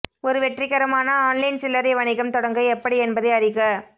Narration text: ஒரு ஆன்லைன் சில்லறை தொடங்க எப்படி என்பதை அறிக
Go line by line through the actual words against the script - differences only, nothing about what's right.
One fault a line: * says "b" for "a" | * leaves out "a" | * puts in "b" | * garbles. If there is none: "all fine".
* puts in "வெற்றிகரமான"
* puts in "வணிகம்"